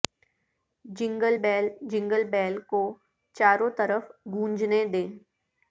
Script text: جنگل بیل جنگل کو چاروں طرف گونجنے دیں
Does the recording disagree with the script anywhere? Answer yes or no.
yes